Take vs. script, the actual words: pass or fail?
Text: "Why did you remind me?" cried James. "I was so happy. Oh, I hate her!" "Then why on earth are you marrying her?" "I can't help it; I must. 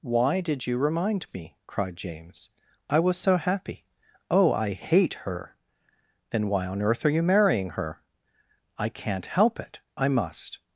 pass